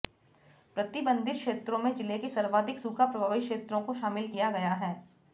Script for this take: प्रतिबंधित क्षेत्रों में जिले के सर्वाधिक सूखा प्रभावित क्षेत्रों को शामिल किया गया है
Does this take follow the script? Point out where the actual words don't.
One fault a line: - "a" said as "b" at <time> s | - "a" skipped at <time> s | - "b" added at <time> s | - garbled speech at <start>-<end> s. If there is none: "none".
none